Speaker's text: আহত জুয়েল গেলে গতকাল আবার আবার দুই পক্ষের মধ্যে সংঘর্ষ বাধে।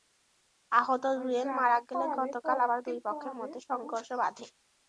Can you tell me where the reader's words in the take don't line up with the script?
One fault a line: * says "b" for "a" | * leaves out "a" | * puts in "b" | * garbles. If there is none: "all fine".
* puts in "মারা"
* leaves out "আবার"